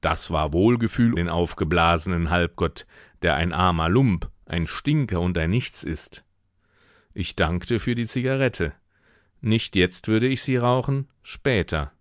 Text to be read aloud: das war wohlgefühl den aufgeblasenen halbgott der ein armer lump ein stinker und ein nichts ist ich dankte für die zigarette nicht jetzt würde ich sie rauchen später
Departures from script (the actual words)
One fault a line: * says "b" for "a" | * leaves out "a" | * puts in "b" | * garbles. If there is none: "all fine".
all fine